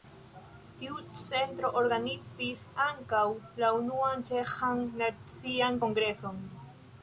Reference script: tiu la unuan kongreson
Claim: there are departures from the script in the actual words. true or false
true